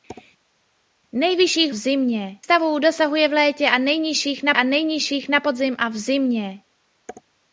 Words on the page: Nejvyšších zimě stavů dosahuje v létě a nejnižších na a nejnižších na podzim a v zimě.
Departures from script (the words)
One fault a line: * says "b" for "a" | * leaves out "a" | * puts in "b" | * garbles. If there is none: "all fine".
all fine